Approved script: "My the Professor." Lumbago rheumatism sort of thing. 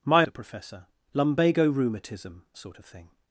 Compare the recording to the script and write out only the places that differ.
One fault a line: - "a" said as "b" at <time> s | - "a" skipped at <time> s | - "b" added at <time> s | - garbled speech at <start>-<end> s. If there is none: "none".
none